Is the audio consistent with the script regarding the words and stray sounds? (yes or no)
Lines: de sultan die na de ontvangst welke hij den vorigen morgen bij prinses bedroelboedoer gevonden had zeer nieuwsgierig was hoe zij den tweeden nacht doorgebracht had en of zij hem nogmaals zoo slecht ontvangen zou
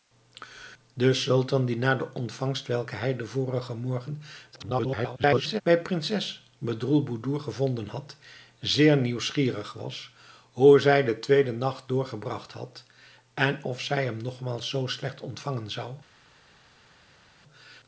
no